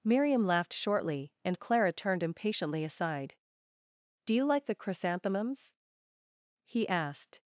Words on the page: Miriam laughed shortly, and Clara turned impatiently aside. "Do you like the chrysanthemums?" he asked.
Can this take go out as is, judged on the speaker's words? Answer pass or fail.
pass